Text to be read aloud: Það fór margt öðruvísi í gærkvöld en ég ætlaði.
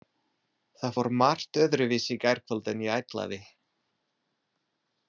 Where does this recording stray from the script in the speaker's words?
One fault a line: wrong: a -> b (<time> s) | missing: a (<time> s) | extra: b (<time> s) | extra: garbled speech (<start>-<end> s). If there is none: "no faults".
no faults